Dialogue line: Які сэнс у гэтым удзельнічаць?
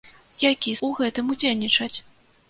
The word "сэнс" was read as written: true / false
false